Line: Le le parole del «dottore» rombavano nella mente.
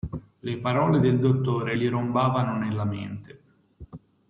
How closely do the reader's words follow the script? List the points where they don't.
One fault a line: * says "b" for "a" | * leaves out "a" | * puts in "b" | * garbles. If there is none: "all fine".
* leaves out "le"
* puts in "gli"